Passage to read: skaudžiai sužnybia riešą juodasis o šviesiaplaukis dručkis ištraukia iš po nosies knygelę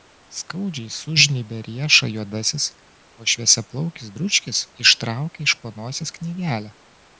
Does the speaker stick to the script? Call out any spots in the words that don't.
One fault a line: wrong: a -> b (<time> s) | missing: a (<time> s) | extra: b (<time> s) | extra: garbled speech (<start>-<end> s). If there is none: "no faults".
no faults